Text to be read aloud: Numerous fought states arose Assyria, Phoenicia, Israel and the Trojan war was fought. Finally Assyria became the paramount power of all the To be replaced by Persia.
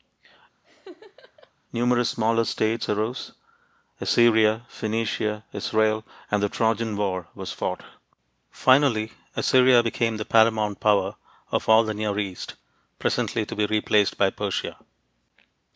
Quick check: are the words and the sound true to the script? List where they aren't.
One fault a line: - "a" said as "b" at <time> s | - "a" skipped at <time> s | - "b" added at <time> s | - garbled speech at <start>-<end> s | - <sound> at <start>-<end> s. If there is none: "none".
- laugh at 0.6-1.5 s
- "fought" said as "smaller" at 2.1 s
- "Near East presently" added at 11.9 s